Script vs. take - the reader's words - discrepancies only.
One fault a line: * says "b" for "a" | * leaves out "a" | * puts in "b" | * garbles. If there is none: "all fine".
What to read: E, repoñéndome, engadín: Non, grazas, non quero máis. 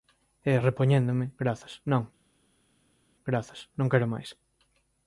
* says "grazas" for "engadín"